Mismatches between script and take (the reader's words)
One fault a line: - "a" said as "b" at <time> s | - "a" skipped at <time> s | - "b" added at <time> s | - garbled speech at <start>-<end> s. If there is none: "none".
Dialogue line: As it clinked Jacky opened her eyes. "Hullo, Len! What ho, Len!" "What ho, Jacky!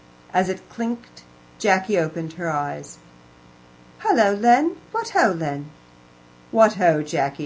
none